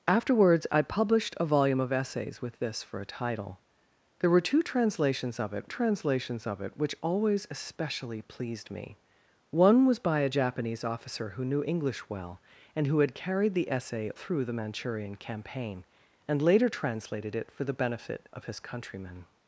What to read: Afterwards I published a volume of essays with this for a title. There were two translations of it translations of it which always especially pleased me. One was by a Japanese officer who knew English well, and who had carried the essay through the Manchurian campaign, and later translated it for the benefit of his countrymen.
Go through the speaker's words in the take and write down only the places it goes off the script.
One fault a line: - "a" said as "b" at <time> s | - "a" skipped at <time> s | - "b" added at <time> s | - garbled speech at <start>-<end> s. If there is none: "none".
none